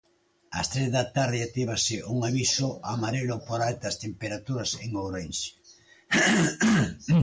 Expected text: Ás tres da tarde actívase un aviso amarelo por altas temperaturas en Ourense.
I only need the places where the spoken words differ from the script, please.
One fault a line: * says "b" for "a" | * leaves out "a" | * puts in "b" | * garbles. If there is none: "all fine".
all fine